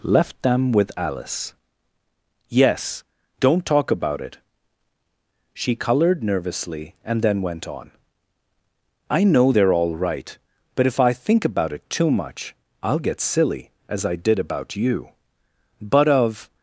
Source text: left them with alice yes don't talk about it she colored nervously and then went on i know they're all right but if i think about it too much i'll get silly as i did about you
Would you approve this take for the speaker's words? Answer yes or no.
no